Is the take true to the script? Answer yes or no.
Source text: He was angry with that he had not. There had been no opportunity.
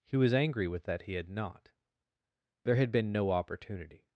yes